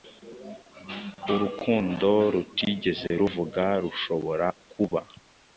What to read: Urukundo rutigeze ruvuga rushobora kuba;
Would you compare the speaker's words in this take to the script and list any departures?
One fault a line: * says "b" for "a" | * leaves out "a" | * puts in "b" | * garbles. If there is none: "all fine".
all fine